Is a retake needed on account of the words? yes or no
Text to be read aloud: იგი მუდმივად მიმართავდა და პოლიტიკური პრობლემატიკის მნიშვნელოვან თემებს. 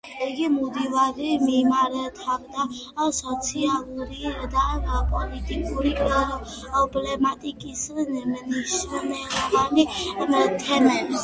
yes